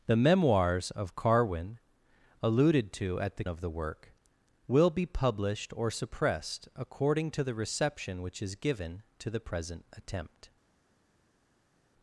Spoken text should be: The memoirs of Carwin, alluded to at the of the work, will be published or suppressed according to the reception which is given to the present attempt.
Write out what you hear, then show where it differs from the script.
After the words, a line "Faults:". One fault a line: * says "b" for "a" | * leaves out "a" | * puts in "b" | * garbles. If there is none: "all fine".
The memoirs of Carwin, alluded to at the of the work, will be published or suppressed according to the reception which is given to the present attempt.
Faults:
all fine